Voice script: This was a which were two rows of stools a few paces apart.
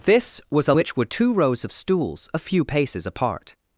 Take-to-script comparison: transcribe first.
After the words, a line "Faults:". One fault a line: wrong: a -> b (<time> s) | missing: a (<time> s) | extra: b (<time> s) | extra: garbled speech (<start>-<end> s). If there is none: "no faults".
This was a which were two rows of stools a few paces apart.
Faults:
no faults